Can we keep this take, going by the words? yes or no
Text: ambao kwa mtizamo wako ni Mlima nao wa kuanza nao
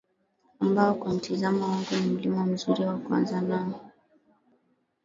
no